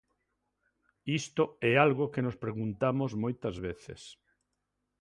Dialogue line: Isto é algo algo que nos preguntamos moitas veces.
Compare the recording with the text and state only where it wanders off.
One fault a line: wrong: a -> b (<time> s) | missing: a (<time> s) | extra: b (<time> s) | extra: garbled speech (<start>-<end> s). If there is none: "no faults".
missing: algo (2.1 s)